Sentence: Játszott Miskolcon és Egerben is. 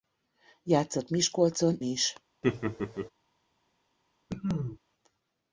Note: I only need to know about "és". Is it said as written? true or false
false